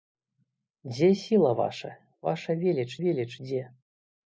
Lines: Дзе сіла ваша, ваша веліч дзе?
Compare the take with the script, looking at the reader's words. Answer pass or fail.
fail